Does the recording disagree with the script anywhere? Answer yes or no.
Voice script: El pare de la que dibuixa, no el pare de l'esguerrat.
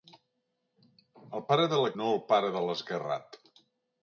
yes